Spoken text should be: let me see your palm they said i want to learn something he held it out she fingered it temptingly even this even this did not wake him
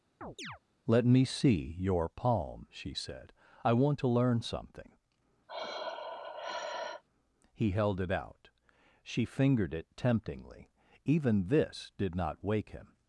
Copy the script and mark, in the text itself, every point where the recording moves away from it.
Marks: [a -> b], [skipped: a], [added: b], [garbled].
let me see your palm [they -> she] said i want to learn something he held it out she fingered it temptingly even this [skipped: even this] did not wake him